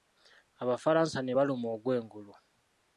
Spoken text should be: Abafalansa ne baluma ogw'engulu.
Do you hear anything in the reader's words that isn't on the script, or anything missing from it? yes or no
no